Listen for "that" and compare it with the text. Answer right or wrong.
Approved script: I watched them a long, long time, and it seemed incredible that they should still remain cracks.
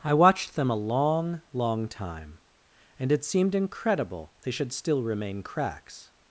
wrong